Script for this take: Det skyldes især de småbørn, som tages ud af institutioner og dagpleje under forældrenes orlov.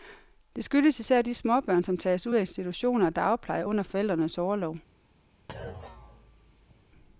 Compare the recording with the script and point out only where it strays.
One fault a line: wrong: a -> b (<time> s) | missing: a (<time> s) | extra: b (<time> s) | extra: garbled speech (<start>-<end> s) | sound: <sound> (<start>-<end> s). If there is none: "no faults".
sound: thud (5.5-6.8 s)